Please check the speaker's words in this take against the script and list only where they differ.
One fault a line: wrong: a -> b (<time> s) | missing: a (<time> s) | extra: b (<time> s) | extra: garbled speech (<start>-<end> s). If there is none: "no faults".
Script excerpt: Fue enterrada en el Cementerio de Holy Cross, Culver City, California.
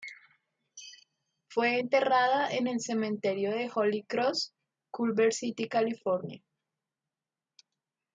no faults